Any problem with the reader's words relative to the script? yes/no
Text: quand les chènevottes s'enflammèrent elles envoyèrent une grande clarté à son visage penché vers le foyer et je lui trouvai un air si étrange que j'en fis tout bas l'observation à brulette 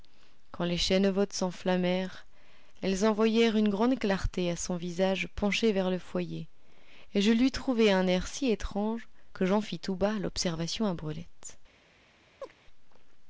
no